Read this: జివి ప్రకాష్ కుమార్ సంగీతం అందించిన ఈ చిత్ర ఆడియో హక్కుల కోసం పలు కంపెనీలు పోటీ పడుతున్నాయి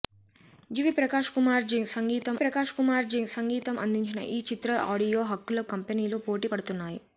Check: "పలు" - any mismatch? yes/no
yes